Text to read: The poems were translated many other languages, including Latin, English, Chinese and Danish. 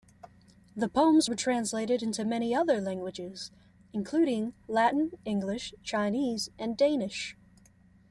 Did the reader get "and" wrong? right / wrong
right